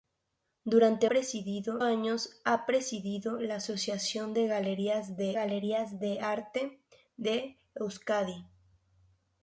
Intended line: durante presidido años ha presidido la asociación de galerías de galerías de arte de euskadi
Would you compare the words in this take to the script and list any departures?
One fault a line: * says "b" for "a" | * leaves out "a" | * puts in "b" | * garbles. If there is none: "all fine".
all fine